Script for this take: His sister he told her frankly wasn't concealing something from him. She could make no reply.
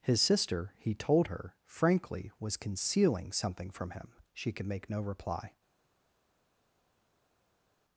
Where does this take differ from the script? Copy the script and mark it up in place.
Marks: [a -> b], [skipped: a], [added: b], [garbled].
His sister he told her frankly [wasn't -> was] concealing something from him. She could make no reply.